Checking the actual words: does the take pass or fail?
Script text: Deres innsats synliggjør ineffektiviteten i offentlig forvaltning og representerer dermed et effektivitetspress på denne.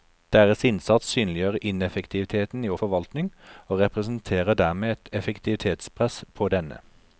fail